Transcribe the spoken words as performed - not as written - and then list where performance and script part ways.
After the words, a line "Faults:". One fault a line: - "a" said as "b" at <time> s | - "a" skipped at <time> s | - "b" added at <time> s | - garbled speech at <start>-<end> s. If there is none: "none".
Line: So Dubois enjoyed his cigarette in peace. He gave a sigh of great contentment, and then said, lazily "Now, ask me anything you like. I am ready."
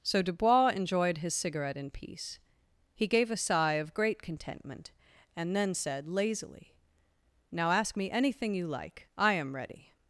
So Dubois enjoyed his cigarette in peace. He gave a sigh of great contentment, and then said, lazily "Now, ask me anything you like. I am ready."
Faults:
none